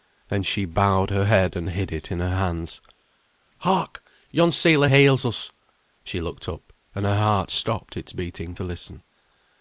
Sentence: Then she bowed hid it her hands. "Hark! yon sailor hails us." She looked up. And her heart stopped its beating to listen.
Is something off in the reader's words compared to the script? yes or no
yes